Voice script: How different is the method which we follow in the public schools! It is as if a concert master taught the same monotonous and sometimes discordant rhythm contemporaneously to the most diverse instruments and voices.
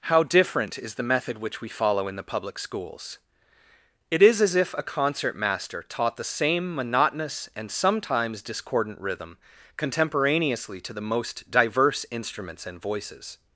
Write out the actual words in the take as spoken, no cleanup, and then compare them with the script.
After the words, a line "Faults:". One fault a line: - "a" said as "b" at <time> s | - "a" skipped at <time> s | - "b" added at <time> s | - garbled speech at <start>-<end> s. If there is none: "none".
How different is the method which we follow in the public schools! It is as if a concert master taught the same monotonous and sometimes discordant rhythm contemporaneously to the most diverse instruments and voices.
Faults:
none